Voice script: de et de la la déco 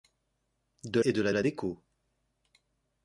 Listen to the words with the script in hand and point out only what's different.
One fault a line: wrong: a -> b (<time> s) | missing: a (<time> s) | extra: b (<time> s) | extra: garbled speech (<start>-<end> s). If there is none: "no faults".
no faults